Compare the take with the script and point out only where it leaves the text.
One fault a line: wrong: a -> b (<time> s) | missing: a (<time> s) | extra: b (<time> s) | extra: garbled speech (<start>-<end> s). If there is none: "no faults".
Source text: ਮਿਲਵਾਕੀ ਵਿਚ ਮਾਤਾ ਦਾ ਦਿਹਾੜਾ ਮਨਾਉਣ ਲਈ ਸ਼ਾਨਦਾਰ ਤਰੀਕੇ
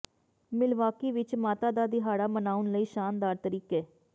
no faults